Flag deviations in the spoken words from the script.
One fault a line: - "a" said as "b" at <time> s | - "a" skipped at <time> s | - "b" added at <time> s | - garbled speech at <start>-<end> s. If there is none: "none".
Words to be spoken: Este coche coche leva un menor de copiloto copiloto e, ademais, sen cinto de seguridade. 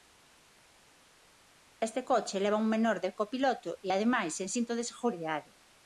- "coche" skipped at 2.4 s
- "copiloto" skipped at 3.7 s